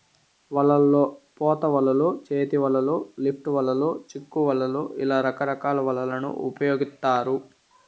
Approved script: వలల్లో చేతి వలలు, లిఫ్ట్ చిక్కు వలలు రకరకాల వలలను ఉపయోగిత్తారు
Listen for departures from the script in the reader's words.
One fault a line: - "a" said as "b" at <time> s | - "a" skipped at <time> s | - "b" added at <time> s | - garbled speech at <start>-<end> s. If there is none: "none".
- "పోత వలలు" added at 1.4 s
- "వలలు" added at 3.5 s
- "ఇలా" added at 5.0 s